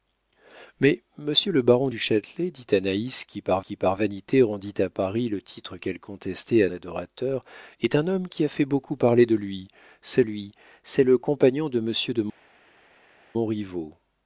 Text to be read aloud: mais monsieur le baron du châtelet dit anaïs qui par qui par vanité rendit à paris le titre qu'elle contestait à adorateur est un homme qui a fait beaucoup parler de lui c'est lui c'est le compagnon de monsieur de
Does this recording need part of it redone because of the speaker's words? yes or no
no